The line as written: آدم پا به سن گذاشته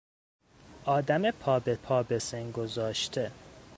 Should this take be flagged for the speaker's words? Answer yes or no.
yes